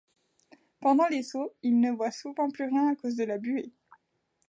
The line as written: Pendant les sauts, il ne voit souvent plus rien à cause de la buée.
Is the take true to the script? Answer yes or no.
yes